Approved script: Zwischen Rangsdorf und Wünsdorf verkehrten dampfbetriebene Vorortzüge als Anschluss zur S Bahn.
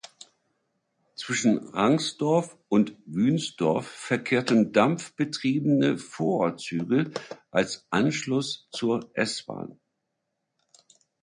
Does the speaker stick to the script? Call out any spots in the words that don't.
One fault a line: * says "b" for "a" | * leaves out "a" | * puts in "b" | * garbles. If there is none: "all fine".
all fine